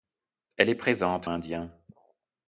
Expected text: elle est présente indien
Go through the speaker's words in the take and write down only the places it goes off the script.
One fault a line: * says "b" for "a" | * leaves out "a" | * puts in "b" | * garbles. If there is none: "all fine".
all fine